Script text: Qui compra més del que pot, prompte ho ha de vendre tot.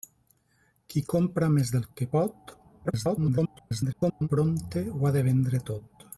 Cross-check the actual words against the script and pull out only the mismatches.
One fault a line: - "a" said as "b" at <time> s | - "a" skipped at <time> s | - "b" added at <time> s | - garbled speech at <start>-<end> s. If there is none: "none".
- garbled speech at 2.8-4.3 s